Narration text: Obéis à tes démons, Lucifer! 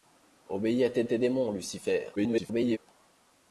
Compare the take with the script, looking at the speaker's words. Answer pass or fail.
fail